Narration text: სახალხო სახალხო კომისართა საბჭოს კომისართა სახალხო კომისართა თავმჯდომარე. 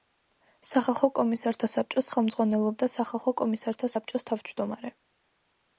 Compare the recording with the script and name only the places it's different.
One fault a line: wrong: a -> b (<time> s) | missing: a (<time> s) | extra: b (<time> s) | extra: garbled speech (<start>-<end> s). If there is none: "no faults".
missing: სახალხო (1.1 s)
wrong: კომისართა -> ხელმძღვანელობდა (2.1 s)
extra: საბჭოს (3.9 s)